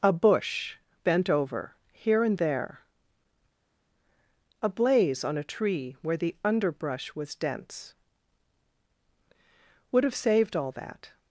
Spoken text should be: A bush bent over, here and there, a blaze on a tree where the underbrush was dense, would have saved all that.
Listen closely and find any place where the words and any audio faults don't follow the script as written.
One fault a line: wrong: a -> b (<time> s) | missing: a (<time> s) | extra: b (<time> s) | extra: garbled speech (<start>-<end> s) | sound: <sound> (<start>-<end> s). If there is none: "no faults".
no faults